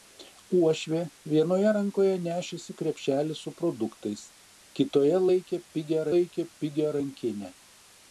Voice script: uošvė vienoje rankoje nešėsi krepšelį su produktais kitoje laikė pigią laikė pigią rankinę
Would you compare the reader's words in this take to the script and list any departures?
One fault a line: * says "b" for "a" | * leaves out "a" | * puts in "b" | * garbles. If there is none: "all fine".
all fine